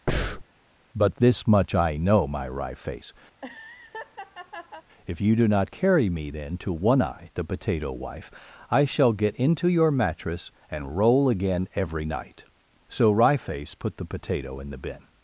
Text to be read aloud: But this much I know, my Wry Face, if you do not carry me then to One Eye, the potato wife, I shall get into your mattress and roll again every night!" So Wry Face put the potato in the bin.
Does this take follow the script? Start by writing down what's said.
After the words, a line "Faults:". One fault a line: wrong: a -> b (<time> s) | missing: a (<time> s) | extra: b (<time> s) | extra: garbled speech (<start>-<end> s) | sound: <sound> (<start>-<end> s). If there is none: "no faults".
But this much I know, my Wry Face, if you do not carry me then to One Eye, the potato wife, I shall get into your mattress and roll again every night!" So Wry Face put the potato in the bin.
Faults:
sound: breath (0.1-0.4 s)
sound: laugh (3.3-4.9 s)